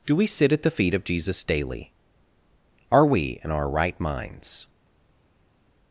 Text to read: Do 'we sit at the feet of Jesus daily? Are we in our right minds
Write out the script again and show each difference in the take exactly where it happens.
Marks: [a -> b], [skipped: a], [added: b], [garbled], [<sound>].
Do 'we sit at the feet of Jesus daily? Are we in our right minds